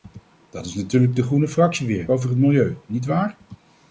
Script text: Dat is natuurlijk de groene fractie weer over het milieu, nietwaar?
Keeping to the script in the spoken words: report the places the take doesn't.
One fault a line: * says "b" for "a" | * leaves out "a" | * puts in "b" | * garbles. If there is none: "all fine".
all fine